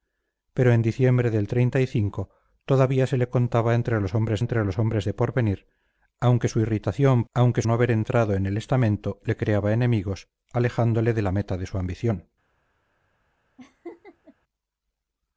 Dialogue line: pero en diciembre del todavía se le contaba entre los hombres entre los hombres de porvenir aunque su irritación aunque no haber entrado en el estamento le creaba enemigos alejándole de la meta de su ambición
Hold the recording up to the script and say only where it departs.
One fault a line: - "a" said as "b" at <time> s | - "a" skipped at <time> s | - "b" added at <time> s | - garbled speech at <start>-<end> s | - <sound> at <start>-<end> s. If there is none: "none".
- laugh at 13.6-14.3 s